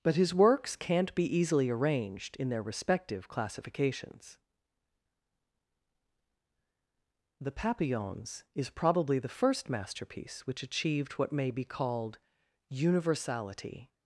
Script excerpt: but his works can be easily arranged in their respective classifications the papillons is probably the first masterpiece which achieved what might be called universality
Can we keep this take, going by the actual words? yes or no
no